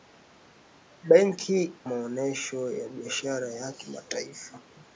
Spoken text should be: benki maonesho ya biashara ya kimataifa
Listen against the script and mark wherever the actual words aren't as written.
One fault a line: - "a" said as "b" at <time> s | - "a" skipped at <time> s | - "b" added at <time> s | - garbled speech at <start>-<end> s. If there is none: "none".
none